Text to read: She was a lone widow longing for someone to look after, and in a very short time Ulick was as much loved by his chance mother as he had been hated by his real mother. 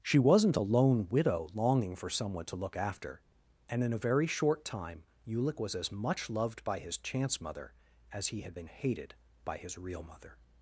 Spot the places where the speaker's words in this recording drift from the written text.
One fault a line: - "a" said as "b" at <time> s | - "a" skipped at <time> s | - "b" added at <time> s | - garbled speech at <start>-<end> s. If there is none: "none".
- "was" said as "wasn't" at 0.2 s